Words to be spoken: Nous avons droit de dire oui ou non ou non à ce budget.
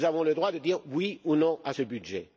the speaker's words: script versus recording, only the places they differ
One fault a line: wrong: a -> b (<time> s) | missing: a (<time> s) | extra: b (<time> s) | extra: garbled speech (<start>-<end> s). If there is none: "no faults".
extra: le (0.2 s)
missing: ou non (1.6 s)